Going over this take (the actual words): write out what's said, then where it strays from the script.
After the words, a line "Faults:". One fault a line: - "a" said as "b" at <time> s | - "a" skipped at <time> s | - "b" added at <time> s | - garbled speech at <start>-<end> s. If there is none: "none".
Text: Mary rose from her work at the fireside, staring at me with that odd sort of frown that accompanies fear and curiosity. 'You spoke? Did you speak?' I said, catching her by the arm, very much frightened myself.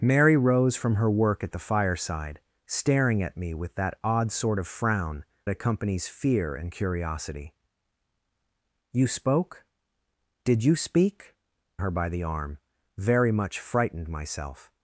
Mary rose from her work at the fireside, staring at me with that odd sort of frown accompanies fear and curiosity. 'You spoke? Did you speak?' her by the arm, very much frightened myself.
Faults:
- "that" skipped at 5.2 s
- "I said catching" skipped at 11.4 s